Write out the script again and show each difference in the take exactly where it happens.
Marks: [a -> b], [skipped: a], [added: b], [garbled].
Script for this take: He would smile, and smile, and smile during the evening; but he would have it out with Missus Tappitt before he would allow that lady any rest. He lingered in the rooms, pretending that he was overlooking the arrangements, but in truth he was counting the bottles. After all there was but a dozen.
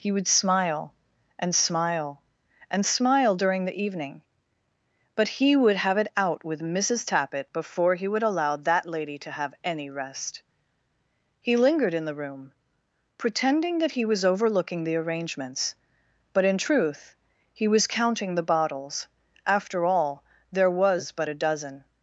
He would smile, and smile, and smile during the evening; but he would have it out with Missus Tappitt before he would allow that lady [added: to have] any rest. He lingered in the [rooms, -> room] pretending that he was overlooking the arrangements, but in truth he was counting the bottles. After all there was but a dozen.